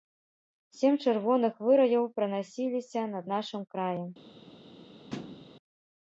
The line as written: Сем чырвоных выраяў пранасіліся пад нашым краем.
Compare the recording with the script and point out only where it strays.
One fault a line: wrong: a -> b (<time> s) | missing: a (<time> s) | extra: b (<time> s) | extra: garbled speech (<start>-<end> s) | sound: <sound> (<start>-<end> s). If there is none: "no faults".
wrong: пад -> над (3.1 s)
sound: thud (5.1-5.5 s)